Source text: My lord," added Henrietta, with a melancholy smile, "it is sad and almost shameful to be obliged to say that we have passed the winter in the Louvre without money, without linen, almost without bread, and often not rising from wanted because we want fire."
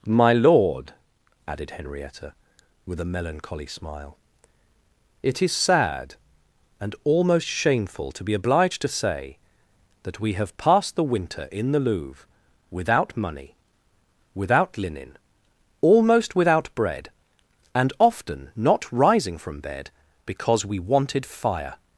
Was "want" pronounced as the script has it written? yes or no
no